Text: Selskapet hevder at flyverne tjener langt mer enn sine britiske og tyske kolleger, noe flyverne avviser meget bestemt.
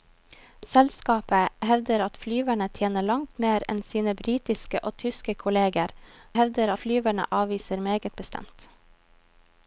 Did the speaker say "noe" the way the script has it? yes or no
no